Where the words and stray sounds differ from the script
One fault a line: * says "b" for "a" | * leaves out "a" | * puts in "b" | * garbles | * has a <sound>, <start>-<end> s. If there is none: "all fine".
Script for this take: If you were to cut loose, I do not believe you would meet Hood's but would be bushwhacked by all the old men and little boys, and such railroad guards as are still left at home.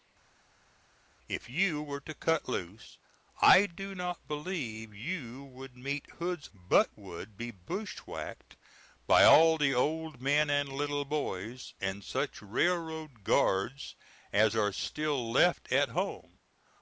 all fine